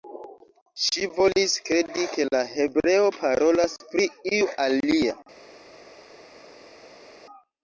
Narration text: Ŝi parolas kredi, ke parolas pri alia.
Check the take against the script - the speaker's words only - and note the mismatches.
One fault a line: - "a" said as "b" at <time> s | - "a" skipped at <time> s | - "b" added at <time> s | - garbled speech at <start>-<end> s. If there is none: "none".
- "parolas" said as "volis" at 1.2 s
- "la hebreo" added at 2.3 s
- "iu" added at 4.3 s